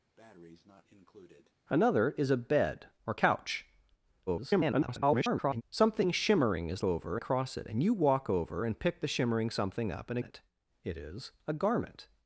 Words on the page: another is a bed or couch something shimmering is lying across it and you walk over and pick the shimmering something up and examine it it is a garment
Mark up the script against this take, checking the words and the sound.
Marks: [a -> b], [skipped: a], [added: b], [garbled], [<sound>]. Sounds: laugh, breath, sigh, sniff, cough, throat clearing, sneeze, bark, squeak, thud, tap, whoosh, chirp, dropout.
[breath] another is a bed or couch [garbled] something shimmering is [lying -> over] across it and you walk over and pick the shimmering something up and [skipped: examine] it it is a garment